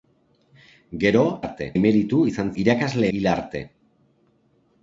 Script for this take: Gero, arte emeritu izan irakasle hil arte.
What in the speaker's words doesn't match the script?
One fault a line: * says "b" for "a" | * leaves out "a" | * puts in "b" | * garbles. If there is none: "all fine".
all fine